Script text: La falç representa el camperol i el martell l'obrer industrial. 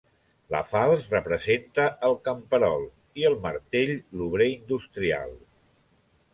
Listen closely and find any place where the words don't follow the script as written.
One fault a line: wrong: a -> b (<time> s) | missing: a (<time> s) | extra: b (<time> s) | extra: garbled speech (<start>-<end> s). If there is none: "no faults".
no faults